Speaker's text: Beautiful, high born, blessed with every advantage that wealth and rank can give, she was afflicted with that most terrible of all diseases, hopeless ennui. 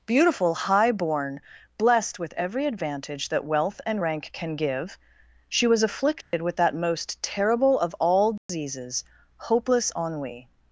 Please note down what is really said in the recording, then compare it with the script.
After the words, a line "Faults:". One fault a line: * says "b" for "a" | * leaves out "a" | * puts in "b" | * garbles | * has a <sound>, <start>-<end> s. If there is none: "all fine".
Beautiful, high born, blessed with every advantage that wealth and rank can give, she was afflicted with that most terrible of all diseases, hopeless ennui.
Faults:
* has a dropout, 6.2-6.3 s
* has a dropout, 8.4-8.5 s